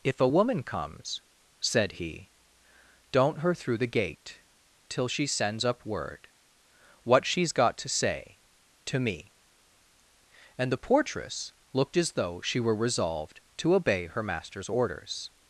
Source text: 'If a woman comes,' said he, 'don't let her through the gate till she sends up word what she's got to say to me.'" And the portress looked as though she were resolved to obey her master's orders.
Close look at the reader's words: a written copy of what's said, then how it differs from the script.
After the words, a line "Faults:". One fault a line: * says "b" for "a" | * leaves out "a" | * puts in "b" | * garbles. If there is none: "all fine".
'If a woman comes,' said he, 'don't her through the gate till she sends up word what she's got to say to me.'" And the portress looked as though she were resolved to obey her master's orders.
Faults:
* leaves out "let"